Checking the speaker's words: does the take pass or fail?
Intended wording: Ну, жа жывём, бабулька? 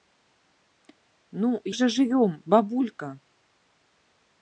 pass